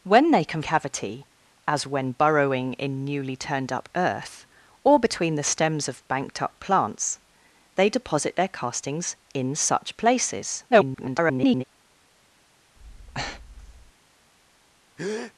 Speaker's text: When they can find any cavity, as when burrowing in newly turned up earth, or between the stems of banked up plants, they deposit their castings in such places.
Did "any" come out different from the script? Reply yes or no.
yes